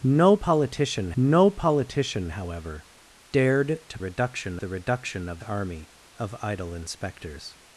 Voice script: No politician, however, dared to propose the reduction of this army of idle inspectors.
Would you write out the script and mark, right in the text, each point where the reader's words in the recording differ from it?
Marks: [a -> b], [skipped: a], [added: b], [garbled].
No politician, [added: no politician] however, dared to [propose -> reduction] the reduction of [skipped: this] army of idle inspectors.